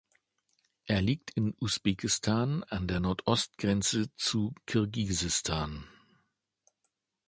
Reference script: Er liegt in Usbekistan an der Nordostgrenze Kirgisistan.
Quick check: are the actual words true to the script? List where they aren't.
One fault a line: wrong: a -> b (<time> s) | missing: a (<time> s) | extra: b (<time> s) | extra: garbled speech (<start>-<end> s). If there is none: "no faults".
extra: zu (4.1 s)